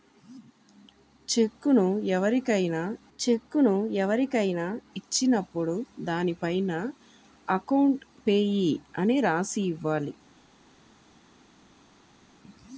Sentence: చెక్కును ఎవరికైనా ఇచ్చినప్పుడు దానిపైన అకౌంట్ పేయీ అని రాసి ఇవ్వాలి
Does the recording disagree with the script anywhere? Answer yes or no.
yes